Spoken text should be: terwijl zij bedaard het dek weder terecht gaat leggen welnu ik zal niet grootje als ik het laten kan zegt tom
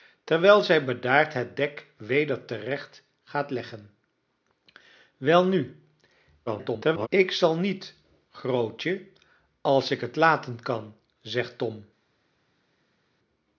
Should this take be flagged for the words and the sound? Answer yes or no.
yes